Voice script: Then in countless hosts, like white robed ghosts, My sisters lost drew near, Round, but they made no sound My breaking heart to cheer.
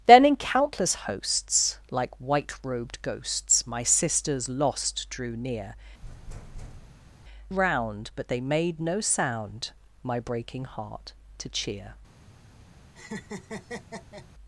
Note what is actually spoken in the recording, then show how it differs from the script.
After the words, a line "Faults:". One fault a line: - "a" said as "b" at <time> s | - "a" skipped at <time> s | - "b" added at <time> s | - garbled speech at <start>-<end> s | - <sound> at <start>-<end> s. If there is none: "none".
Then in countless hosts, like white robed ghosts, My sisters lost drew near, Round, but they made no sound My breaking heart to cheer.
Faults:
- thud at 6.0-7.3 s
- laugh at 12.9-14.3 s